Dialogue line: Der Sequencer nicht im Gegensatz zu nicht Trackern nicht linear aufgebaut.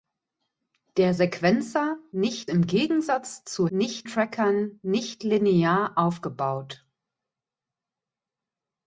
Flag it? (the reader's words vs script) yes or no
no